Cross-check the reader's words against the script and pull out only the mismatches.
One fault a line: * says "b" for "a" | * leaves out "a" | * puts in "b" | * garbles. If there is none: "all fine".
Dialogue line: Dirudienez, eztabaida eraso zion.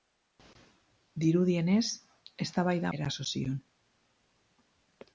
all fine